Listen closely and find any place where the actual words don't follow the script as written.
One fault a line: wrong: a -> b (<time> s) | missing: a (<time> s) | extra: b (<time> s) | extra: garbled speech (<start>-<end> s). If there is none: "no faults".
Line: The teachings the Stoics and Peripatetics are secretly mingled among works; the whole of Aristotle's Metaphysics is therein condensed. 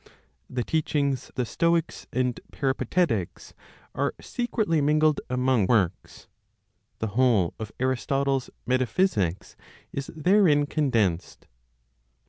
no faults